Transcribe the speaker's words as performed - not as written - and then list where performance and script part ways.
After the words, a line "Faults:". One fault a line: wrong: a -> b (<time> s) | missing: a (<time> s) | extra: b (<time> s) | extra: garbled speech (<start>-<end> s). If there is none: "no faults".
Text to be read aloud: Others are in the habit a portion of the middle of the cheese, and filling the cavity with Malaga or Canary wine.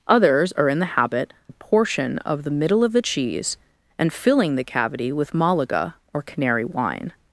Others are in the habit a portion of the middle of the cheese, and filling the cavity with Malaga or Canary wine.
Faults:
no faults